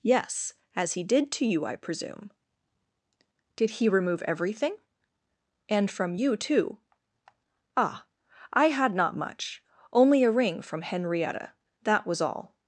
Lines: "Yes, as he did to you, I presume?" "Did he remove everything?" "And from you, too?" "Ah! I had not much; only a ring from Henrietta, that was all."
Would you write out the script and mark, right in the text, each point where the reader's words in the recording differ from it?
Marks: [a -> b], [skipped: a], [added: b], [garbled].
"Yes, as he did to you, I presume?" "Did he remove everything?" "And from you, too?" "Ah! I had not much; only a ring from Henrietta, that was all."